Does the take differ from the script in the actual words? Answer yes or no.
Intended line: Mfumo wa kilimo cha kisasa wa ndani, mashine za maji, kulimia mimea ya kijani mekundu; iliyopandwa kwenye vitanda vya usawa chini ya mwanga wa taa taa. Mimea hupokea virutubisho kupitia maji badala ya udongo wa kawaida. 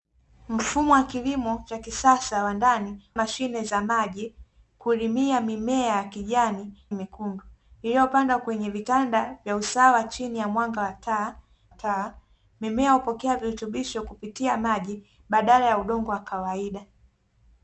no